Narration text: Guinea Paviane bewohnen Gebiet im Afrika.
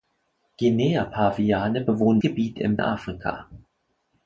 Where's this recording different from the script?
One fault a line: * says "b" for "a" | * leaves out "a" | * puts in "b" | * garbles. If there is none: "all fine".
all fine